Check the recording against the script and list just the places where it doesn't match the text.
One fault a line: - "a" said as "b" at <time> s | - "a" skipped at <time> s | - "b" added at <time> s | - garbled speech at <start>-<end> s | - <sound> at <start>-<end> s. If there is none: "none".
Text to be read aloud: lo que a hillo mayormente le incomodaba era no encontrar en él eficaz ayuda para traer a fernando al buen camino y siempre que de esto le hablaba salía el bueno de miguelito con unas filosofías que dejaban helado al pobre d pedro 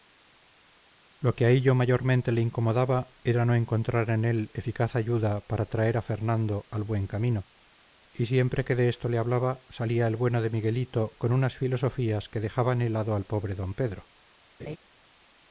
- laugh at 14.6-14.8 s